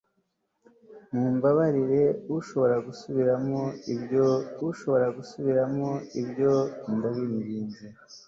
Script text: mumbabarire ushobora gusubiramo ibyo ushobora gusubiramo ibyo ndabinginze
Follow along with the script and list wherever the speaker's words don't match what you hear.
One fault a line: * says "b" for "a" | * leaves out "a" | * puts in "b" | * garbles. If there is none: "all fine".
all fine